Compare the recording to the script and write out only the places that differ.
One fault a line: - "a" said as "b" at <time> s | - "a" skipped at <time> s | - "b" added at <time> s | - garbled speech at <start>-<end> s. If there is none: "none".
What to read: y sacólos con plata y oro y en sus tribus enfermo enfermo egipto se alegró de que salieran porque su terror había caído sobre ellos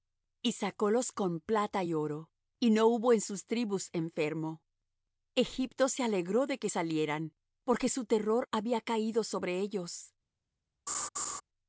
- "no hubo" added at 2.7 s
- "enfermo" skipped at 4.6 s